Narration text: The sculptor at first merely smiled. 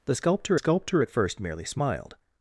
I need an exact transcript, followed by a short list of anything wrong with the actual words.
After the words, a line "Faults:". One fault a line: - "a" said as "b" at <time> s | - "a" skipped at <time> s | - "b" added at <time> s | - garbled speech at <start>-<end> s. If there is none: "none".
The sculptor sculptor at first merely smiled.
Faults:
- "sculptor" added at 0.5 s